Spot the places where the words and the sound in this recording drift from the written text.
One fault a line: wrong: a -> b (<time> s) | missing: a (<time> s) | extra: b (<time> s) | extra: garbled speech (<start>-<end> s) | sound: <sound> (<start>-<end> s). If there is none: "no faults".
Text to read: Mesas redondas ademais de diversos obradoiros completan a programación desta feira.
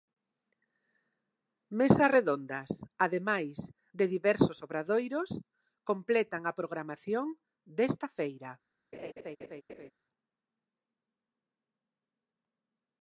sound: laugh (8.9-9.9 s)